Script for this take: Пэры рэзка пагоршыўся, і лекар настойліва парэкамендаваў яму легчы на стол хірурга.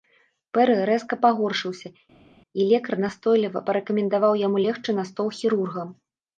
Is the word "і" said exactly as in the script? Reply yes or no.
yes